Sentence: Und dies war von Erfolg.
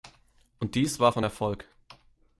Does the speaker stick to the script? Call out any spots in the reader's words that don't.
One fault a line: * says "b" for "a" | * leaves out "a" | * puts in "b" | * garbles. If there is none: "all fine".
all fine